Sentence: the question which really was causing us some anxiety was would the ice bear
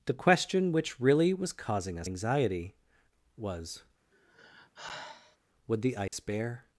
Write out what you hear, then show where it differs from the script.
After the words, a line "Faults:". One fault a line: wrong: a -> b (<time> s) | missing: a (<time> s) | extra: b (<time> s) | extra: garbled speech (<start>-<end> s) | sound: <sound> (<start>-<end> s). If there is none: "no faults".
the question which really was causing us anxiety was would the ice bear
Faults:
missing: some (2.1 s)
sound: sigh (4.1-5.4 s)
sound: dropout (6.1-6.1 s)